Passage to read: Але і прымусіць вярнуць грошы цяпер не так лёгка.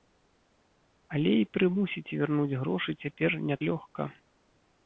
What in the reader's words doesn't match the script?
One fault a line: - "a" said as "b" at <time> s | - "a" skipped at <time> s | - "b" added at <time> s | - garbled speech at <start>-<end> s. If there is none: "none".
- "так" skipped at 3.6 s